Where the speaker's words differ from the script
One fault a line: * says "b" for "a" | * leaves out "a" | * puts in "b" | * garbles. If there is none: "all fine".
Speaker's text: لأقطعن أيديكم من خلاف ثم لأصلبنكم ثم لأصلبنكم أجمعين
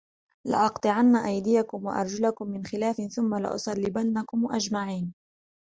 * puts in "وأرجلكم"
* leaves out "ثم لأصلبنكم"